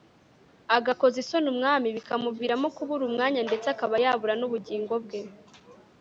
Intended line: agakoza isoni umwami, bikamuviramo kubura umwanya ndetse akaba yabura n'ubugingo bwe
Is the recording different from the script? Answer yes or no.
no